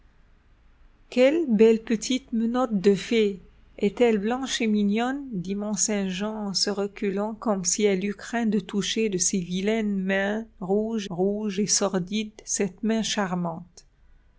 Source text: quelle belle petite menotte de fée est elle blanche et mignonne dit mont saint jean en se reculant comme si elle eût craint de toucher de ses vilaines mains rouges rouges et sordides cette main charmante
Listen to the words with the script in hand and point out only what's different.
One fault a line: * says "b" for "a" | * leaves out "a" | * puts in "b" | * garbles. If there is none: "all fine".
all fine